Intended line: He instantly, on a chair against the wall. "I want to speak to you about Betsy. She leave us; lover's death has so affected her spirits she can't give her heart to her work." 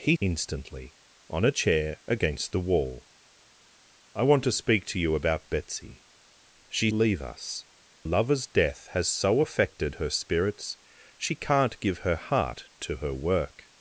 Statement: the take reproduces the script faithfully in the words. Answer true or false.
true